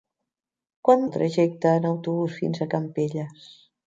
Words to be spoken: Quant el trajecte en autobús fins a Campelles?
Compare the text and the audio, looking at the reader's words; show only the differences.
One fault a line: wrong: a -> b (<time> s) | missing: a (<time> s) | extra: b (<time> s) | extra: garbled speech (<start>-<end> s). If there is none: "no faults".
no faults